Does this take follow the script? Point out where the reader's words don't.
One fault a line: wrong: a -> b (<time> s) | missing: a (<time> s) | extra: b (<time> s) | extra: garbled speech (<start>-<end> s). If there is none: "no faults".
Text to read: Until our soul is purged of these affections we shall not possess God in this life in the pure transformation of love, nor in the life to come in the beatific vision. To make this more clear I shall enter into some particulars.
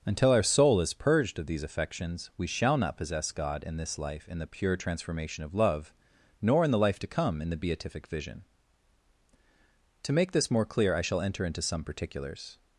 no faults